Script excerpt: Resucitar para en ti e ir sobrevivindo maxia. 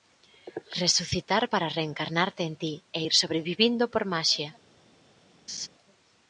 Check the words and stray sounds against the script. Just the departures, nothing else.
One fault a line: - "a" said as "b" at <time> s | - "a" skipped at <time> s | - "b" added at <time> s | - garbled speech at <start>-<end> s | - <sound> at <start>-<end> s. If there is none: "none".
- "reencarnarte" added at 1.8 s
- "por" added at 3.9 s
- laugh at 5.5-5.7 s